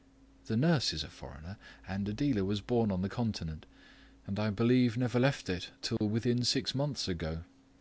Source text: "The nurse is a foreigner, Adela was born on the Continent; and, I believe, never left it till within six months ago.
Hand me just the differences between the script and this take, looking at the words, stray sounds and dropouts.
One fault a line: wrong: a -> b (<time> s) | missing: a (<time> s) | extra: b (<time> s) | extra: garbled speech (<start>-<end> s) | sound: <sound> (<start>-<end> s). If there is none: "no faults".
extra: and (1.9 s)
sound: dropout (6.0-6.0 s)